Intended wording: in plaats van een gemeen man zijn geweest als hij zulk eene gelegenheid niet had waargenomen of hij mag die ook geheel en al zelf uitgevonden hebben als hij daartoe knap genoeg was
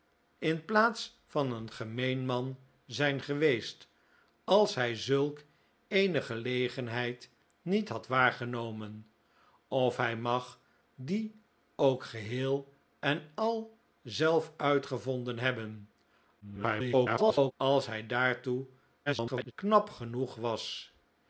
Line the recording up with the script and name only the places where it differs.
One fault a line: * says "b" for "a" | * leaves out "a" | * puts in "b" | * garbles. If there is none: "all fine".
* garbles
* garbles